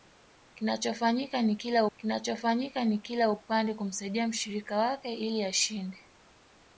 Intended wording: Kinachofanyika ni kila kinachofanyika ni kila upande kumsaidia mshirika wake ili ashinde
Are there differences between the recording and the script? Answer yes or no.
no